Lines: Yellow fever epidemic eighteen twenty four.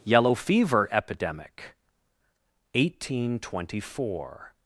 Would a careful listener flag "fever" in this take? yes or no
no